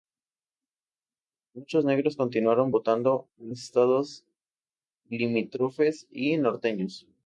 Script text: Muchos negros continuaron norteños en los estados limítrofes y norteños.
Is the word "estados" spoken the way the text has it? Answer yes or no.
yes